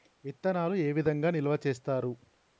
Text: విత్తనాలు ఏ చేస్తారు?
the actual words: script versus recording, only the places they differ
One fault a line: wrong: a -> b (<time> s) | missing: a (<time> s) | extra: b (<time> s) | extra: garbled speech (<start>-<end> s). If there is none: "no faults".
extra: విధంగా నిల్వ (0.9 s)